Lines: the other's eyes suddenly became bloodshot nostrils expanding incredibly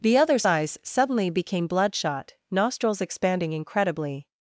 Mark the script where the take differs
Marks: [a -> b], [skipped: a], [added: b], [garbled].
the other's eyes suddenly became bloodshot nostrils expanding incredibly